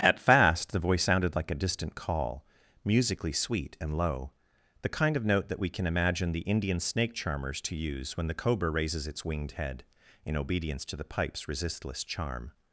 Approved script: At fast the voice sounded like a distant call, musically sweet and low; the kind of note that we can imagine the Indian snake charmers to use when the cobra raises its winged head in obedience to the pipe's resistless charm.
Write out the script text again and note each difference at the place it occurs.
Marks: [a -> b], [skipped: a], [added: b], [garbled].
At fast the voice sounded like a distant call, musically sweet and low; the kind of note that we can imagine the Indian snake charmers to use when the cobra raises its winged head in obedience to the pipe's resistless charm.